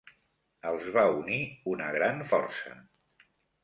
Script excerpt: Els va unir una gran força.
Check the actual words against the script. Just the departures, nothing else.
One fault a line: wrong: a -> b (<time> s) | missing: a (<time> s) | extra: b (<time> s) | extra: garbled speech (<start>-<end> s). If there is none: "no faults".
no faults